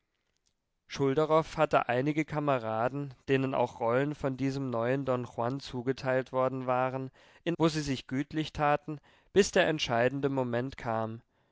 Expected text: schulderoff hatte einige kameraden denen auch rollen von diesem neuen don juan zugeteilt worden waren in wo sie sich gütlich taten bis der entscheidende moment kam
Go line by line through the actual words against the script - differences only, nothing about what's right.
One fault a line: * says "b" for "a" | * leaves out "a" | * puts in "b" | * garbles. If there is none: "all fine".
all fine